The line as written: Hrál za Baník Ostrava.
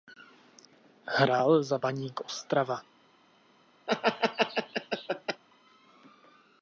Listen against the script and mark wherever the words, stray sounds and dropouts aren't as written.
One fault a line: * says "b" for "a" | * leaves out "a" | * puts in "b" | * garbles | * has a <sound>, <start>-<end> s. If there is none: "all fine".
* has a laugh, 3.9-5.4 s